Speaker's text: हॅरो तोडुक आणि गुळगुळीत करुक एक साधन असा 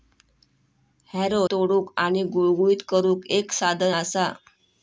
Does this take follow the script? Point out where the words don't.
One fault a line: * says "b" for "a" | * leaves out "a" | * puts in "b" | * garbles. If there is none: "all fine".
all fine